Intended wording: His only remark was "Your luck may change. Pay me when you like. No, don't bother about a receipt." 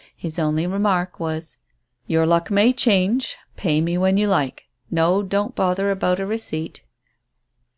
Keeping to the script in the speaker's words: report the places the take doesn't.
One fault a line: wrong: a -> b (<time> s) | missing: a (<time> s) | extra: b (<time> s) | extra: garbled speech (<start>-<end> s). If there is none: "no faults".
no faults